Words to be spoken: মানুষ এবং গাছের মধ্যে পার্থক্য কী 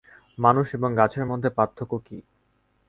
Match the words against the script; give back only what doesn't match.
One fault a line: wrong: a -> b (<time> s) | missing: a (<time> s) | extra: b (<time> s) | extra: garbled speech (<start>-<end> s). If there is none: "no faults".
no faults